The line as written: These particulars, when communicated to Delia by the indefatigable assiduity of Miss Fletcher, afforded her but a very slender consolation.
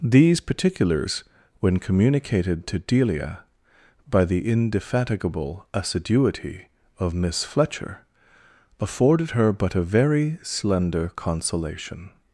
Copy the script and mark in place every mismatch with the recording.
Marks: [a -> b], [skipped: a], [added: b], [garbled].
These particulars, when communicated to Delia by the indefatigable assiduity of Miss Fletcher, afforded her but a very slender consolation.